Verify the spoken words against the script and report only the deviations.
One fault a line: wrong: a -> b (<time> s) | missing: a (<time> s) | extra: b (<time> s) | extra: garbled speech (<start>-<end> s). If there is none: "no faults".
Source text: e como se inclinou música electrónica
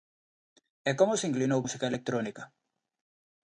no faults